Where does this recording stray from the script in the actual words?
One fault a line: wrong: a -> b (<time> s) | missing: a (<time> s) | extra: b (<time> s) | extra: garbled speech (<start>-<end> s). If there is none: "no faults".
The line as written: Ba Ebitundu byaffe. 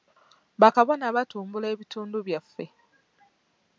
extra: Kabona batumbula (0.7 s)